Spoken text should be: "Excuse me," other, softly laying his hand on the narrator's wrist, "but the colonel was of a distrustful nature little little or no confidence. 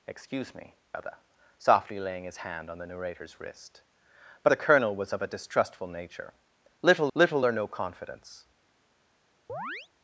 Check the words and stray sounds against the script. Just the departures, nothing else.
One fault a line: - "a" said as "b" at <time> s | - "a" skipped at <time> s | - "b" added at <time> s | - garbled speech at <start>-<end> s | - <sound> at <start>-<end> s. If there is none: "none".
- chirp at 9.5-9.9 s